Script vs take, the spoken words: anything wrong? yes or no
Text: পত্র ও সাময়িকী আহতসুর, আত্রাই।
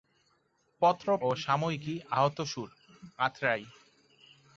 no